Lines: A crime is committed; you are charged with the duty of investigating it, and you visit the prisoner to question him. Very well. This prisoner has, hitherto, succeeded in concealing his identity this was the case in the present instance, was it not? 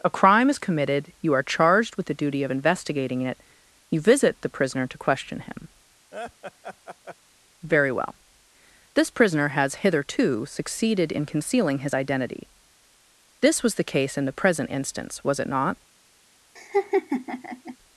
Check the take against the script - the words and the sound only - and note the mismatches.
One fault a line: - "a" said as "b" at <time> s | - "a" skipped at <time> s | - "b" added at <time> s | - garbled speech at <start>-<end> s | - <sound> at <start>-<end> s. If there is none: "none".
- "and" skipped at 3.4 s
- laugh at 6.1-7.2 s
- laugh at 16.6-17.8 s